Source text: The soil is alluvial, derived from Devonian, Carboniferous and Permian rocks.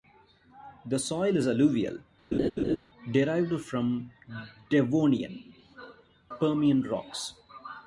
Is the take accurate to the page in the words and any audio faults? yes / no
no